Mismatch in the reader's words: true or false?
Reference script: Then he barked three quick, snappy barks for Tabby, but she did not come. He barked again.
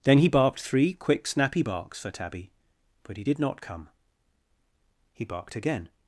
true